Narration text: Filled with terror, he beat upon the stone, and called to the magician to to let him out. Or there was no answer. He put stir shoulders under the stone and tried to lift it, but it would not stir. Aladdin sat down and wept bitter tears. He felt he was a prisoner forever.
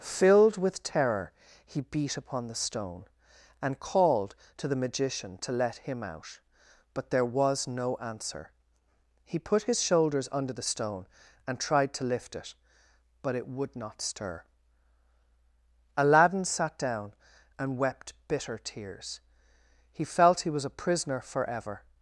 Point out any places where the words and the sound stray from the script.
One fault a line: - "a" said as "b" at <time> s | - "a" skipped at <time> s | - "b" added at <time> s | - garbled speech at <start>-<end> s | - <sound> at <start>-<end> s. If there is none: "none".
- "to" skipped at 5.5 s
- "Or" said as "But" at 6.9 s
- "stir" said as "his" at 9.6 s